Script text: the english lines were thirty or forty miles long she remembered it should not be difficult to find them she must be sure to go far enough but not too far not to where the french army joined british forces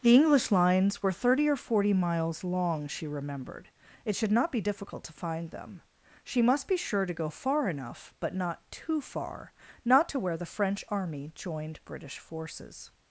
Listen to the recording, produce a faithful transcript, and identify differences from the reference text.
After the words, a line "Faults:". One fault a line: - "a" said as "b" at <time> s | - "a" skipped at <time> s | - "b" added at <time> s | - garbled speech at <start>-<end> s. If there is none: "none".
the english lines were thirty or forty miles long she remembered it should not be difficult to find them she must be sure to go far enough but not too far not to where the french army joined british forces
Faults:
none